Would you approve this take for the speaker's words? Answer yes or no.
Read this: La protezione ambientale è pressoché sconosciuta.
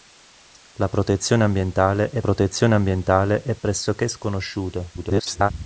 no